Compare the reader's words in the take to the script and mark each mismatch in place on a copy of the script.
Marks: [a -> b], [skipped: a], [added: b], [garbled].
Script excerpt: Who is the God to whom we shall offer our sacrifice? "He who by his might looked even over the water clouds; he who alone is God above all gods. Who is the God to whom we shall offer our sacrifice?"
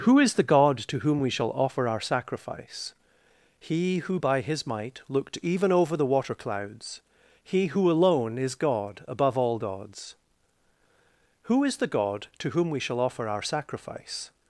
Who is the God to whom we shall offer our sacrifice? "He who by his might looked even over the water clouds; he who alone is God above all gods. Who is the God to whom we shall offer our sacrifice?"